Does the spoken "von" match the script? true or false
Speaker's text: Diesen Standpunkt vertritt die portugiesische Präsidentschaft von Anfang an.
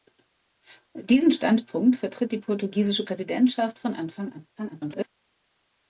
true